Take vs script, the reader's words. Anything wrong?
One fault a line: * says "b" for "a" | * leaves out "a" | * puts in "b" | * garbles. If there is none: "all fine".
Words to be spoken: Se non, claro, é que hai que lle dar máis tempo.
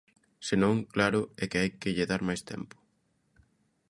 all fine